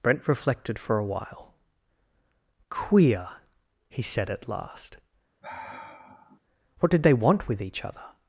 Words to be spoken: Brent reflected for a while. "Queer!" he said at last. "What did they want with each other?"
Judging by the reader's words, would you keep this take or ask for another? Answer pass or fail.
pass